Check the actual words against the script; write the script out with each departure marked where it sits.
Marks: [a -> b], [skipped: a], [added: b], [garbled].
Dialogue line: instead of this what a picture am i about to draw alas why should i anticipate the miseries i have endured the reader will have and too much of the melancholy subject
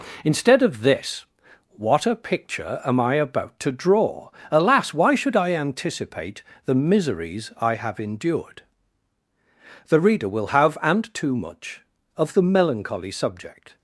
instead of this what a picture am i about to draw alas why should i anticipate the miseries i have endured the reader will have and too much of the melancholy subject